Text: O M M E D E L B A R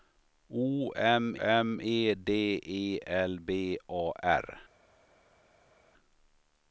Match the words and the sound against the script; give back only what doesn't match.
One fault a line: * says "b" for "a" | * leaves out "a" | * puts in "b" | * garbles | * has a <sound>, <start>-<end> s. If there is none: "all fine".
all fine